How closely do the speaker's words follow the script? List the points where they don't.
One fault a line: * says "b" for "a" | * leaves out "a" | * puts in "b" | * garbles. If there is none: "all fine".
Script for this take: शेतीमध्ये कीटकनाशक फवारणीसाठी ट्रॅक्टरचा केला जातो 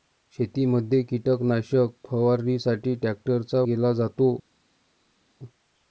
all fine